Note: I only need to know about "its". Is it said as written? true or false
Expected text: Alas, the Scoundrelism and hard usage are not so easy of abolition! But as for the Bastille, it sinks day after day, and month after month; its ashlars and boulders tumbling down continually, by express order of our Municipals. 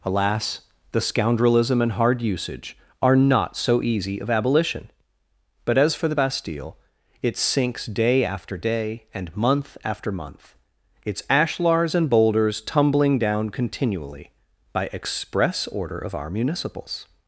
true